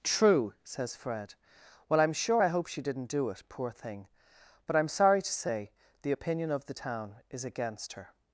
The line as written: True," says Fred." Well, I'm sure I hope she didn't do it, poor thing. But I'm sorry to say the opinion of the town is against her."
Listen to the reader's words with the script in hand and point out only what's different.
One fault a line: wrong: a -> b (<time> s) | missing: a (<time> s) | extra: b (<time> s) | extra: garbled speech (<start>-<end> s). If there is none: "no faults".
no faults